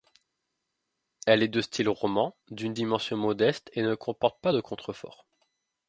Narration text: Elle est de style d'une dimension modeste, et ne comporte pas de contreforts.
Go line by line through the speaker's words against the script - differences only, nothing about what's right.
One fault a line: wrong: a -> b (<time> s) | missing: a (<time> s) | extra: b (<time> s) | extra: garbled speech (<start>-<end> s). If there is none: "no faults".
extra: roman (1.9 s)